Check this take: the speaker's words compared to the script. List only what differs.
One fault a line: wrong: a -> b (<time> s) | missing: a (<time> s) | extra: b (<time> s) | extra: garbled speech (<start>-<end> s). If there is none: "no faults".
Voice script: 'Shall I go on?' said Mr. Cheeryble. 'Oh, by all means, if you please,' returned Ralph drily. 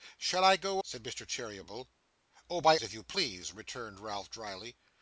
missing: on (0.8 s)
missing: all means (2.8 s)